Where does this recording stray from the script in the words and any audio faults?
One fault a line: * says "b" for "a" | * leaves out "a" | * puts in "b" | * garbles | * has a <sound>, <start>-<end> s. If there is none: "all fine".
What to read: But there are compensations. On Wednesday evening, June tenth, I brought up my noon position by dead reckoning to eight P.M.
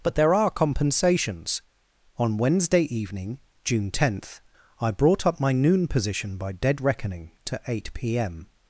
all fine